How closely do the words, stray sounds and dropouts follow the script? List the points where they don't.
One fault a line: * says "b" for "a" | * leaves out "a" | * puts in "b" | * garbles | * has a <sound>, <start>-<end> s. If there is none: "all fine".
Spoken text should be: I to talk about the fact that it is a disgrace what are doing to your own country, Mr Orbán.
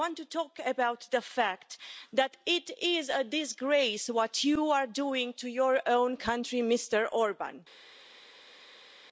* puts in "want"
* puts in "you"